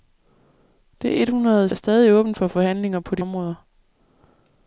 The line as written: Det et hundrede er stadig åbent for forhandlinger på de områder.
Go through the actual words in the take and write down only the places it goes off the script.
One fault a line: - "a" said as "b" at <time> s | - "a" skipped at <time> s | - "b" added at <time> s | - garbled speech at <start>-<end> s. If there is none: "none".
none